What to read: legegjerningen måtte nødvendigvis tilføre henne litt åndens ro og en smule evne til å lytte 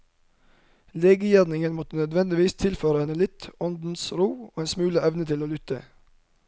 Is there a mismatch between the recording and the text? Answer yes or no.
no